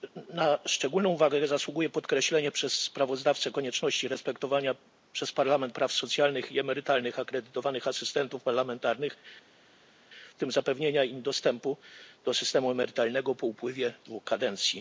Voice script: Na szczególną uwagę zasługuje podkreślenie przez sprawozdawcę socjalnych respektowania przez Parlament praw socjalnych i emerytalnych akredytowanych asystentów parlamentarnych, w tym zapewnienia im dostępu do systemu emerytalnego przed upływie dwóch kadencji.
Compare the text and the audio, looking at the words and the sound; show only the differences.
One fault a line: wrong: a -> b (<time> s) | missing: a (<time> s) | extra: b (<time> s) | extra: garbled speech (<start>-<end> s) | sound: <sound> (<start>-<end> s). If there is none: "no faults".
wrong: socjalnych -> konieczności (3.5 s)
wrong: przed -> po (13.3 s)